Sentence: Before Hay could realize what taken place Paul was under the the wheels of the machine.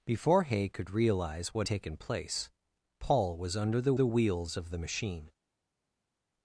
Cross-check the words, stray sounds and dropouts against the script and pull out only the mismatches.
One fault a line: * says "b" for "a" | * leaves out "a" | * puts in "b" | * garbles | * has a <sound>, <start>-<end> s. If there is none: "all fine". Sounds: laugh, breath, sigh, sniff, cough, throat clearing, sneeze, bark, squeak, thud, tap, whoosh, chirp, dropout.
all fine